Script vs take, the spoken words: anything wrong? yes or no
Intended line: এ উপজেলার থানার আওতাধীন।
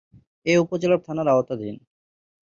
no